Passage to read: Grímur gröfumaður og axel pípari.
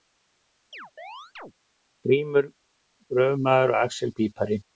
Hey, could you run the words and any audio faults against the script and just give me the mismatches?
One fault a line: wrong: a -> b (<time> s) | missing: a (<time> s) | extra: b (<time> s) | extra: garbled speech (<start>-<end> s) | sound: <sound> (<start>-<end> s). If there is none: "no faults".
sound: chirp (0.7-1.5 s)